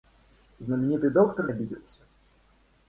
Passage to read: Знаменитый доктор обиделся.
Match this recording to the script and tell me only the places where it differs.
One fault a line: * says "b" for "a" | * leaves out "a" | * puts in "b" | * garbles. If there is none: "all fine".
all fine